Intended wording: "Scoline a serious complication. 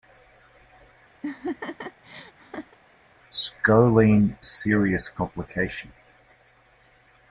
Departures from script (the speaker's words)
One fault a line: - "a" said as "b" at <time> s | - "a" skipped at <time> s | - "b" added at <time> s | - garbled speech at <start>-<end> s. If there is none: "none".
none